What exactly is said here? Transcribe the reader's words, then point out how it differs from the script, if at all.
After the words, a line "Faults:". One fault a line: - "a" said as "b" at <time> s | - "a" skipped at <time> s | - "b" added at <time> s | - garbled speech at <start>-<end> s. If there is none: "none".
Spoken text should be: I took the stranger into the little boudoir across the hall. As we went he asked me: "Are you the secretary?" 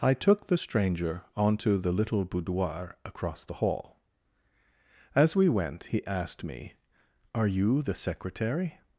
I took the stranger onto the little boudoir across the hall. As we went he asked me: "Are you the secretary?"
Faults:
- "into" said as "onto" at 1.4 s